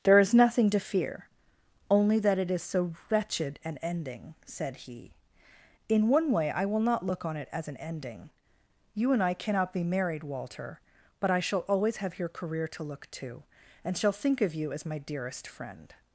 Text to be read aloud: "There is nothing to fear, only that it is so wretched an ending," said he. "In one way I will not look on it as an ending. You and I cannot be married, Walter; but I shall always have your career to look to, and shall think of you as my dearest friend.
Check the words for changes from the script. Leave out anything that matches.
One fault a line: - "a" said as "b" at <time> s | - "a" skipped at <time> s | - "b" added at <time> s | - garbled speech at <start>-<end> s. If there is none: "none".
none